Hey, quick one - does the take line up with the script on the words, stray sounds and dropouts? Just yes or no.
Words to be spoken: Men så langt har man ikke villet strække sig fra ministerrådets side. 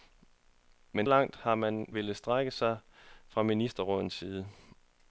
no